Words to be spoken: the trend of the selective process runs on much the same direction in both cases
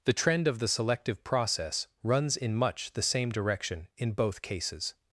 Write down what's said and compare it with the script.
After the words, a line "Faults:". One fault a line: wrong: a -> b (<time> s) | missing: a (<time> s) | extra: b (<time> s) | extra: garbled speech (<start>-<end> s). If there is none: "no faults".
the trend of the selective process runs in much the same direction in both cases
Faults:
wrong: on -> in (2.4 s)